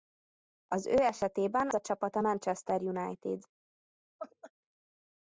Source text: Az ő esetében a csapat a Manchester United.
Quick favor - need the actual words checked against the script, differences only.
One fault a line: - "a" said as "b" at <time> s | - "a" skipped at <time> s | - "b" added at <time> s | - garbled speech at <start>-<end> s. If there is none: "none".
none